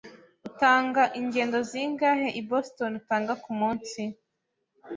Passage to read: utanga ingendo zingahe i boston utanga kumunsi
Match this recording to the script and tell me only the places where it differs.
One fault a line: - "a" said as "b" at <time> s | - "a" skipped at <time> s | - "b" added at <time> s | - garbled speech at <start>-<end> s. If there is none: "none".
none